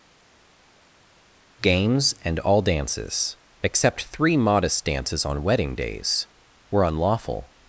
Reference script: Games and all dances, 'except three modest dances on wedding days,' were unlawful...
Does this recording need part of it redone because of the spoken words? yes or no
no